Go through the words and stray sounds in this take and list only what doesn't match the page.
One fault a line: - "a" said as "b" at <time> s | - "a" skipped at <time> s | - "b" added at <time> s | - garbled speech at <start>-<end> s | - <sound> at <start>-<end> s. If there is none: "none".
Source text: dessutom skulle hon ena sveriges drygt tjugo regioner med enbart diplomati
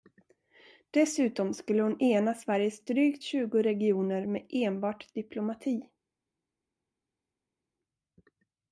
none